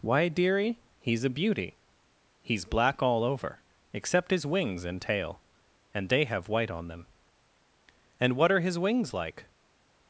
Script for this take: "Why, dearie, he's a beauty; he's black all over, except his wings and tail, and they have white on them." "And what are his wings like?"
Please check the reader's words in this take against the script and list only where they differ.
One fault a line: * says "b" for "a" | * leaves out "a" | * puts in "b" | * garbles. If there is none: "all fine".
all fine